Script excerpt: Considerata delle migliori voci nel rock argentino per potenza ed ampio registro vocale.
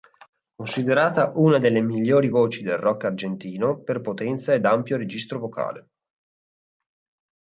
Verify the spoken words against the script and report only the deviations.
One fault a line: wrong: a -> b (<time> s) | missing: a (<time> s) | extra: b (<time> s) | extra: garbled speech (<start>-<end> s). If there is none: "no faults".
extra: una (1.4 s)
wrong: nel -> del (2.6 s)